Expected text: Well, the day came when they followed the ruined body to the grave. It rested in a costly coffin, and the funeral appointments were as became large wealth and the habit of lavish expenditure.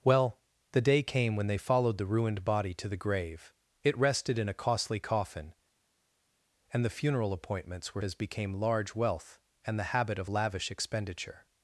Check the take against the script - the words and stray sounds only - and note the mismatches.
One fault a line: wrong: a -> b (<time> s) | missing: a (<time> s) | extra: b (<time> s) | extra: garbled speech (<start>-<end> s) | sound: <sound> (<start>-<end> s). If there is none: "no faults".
no faults